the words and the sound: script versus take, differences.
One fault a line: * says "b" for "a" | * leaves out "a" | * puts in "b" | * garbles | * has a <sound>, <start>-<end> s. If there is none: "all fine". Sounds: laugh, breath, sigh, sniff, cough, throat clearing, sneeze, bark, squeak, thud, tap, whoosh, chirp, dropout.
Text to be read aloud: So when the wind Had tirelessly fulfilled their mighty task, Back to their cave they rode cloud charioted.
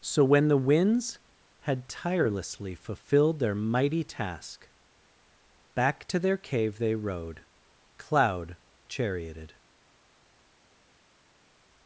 * says "winds" for "wind"